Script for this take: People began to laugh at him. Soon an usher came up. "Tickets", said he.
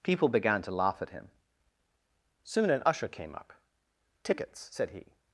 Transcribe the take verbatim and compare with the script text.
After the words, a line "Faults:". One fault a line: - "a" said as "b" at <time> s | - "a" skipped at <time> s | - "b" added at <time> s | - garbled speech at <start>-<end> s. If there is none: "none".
People began to laugh at him. Soon an usher came up. "Tickets", said he.
Faults:
none